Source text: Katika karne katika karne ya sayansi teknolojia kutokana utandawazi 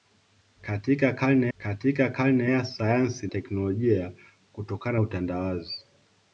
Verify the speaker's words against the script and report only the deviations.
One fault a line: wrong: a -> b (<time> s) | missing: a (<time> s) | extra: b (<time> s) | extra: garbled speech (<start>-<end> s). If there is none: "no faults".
no faults